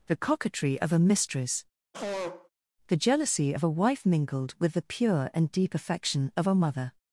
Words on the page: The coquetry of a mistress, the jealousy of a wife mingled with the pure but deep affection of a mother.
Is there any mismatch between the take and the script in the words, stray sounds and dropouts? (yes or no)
yes